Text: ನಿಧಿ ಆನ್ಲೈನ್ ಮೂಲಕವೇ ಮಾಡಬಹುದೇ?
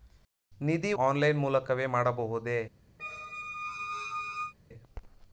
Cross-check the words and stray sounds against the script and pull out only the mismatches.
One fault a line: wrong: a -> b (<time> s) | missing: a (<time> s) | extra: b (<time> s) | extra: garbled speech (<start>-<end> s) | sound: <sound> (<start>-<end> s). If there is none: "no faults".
sound: squeak (3.0-4.5 s)